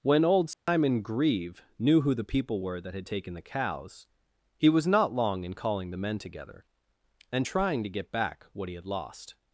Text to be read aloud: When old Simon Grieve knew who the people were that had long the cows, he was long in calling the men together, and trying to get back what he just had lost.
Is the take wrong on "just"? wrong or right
wrong